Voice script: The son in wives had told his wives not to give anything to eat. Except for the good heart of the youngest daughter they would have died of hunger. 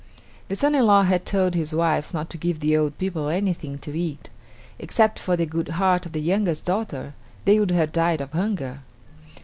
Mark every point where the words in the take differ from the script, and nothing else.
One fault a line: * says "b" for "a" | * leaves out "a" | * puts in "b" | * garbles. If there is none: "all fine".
* says "law" for "wives"
* puts in "the old people"